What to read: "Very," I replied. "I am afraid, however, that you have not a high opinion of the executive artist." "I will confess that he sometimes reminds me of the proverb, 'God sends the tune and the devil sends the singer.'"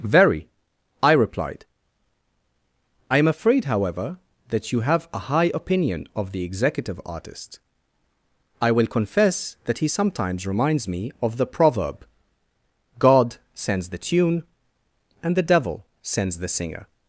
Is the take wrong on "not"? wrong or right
wrong